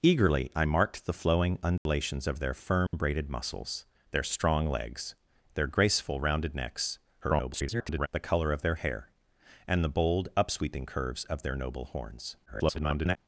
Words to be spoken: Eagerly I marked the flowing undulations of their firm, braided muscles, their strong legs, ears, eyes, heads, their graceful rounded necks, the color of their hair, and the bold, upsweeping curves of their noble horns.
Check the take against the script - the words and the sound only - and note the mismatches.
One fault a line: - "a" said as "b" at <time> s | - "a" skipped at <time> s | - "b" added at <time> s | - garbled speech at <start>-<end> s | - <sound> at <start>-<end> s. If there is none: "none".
- dropout at 1.8-1.9 s
- dropout at 2.9-2.9 s
- "ears eyes heads" skipped at 5.1 s
- garbled speech at 7.2-8.1 s
- garbled speech at 12.5-13.2 s